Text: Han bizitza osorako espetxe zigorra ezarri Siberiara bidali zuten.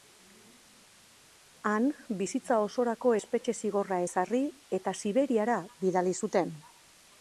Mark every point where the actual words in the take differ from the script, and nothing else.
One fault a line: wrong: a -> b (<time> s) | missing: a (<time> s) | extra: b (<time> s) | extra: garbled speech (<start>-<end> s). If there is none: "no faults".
extra: eta (4.8 s)